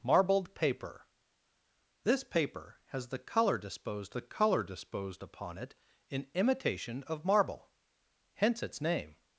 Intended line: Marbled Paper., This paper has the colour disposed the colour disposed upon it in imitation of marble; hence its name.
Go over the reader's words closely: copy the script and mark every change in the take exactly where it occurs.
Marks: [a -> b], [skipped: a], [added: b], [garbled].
Marbled Paper., This paper has the colour disposed the colour disposed upon it in imitation of marble; hence its name.